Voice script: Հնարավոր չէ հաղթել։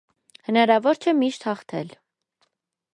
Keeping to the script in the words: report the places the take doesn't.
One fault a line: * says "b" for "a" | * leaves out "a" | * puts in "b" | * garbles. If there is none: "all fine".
* puts in "միշտ"